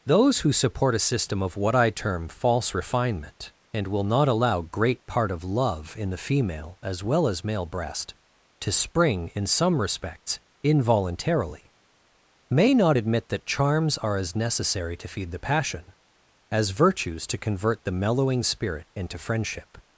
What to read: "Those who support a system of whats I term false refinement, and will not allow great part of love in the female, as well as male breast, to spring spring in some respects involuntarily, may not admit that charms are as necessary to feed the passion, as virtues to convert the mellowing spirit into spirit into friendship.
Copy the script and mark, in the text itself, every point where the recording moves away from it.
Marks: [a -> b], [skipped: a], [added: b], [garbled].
"Those who support a system of [whats -> what] I term false refinement, and will not allow great part of love in the female, as well as male breast, to spring [skipped: spring] in some respects involuntarily, may not admit that charms are as necessary to feed the passion, as virtues to convert the mellowing spirit into [skipped: spirit into] friendship.